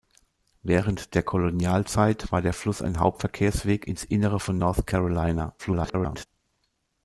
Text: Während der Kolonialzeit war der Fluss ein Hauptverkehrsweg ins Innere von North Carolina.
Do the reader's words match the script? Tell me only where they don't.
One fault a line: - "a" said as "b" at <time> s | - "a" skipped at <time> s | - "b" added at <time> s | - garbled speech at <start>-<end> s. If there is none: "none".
- garbled speech at 5.6-6.3 s